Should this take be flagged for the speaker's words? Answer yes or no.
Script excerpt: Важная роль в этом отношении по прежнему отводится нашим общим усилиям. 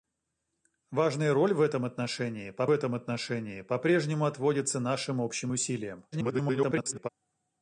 yes